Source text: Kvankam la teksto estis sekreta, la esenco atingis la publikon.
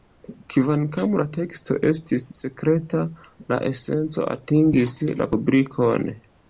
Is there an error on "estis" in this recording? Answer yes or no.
no